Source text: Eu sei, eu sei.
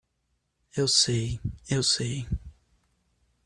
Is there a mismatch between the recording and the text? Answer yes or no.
no